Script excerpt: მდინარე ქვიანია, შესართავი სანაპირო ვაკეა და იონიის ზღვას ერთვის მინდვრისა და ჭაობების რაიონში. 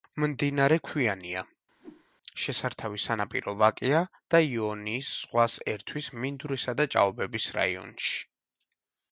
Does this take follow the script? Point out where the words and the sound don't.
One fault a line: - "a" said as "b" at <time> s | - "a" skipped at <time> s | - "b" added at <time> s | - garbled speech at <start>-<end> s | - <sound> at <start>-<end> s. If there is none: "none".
- whoosh at 1.8-2.1 s